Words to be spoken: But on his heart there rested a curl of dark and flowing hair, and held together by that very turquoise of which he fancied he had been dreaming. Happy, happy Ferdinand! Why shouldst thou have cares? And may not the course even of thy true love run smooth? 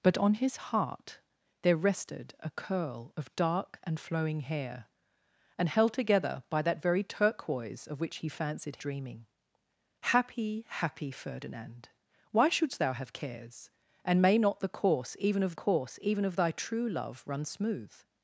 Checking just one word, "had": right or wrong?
wrong